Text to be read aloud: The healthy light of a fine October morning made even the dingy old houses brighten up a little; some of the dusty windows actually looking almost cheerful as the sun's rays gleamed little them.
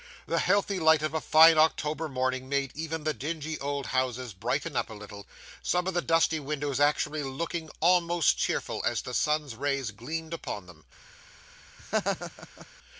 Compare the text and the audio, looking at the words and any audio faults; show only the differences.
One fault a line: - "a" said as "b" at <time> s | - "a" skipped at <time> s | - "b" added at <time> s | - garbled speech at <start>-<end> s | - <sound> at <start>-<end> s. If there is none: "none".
- "little" said as "upon" at 10.3 s
- laugh at 11.8-12.7 s